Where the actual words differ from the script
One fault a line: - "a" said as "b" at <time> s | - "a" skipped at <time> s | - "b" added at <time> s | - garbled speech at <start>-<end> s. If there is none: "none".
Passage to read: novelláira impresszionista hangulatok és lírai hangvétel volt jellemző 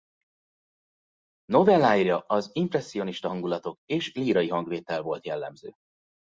- "az" added at 2.2 s